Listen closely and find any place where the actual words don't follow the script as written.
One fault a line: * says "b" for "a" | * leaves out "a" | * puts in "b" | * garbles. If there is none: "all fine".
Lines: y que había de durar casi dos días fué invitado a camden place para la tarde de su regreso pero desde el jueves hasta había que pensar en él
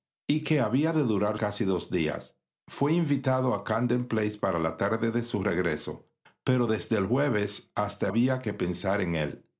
all fine